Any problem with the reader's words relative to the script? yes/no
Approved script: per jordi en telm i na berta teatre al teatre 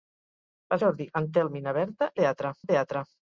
no